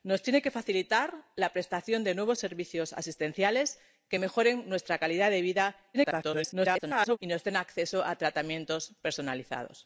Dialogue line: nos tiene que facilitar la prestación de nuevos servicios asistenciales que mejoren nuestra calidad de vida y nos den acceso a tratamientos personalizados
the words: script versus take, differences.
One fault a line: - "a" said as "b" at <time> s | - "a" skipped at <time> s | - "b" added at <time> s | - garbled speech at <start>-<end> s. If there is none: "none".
- garbled speech at 5.9-7.2 s